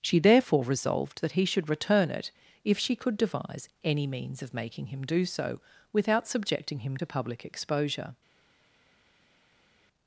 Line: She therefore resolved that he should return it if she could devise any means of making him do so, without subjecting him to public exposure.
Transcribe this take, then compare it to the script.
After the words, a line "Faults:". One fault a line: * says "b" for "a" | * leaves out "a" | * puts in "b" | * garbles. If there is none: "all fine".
She therefore resolved that he should return it if she could devise any means of making him do so, without subjecting him to public exposure.
Faults:
all fine